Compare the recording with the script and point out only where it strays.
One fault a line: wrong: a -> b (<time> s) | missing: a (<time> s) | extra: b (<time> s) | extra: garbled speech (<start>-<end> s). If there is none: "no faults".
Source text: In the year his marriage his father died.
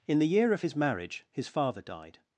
extra: of (0.5 s)